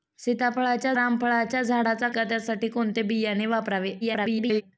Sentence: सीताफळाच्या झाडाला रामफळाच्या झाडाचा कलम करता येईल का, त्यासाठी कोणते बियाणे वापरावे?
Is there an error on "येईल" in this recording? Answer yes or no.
yes